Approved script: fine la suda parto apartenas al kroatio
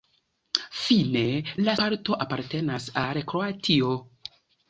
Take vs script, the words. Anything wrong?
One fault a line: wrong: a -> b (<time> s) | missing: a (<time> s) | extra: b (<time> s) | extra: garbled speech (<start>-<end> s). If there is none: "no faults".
missing: suda (1.7 s)